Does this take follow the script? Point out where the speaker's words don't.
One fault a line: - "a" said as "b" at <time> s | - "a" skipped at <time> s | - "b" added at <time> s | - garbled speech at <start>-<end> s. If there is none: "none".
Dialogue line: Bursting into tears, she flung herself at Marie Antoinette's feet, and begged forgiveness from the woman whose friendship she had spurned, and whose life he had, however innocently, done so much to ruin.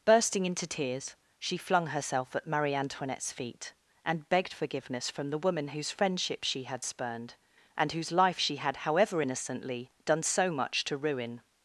- "he" said as "she" at 8.4 s